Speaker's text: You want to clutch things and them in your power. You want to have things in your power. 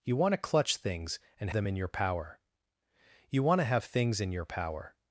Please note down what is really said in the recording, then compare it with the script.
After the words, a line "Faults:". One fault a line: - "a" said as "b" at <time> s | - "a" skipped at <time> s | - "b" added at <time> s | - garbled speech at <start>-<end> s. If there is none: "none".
You want to clutch things and them in your power. You want to have things in your power.
Faults:
none